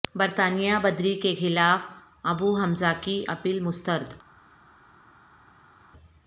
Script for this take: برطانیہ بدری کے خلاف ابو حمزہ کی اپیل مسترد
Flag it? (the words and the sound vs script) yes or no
no